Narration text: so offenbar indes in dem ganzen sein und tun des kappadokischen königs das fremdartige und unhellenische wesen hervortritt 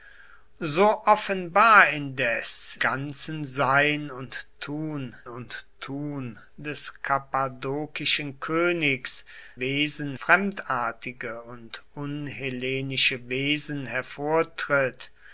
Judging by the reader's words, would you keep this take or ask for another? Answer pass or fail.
fail